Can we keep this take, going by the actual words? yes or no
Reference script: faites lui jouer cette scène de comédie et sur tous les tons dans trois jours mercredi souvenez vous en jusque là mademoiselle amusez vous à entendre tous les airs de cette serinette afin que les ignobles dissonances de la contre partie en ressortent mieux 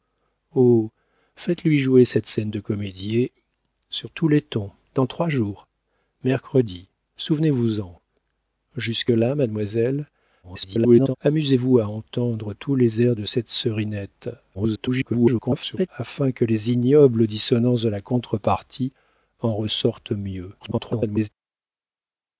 no